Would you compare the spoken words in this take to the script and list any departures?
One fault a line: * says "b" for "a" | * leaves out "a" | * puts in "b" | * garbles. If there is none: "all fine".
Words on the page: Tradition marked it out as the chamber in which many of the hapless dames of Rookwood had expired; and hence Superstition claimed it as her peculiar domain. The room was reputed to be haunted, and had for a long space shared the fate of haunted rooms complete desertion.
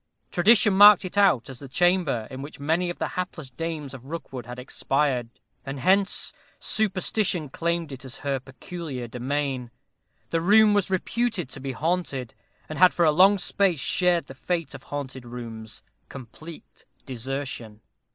all fine